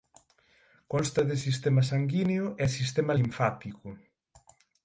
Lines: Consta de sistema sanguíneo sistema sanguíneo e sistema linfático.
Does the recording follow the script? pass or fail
fail